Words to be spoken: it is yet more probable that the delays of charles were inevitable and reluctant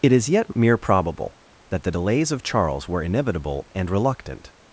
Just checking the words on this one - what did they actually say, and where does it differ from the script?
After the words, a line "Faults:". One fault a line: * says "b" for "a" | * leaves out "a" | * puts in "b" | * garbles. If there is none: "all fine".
it is yet mere probable that the delays of charles were inevitable and reluctant
Faults:
* says "mere" for "more"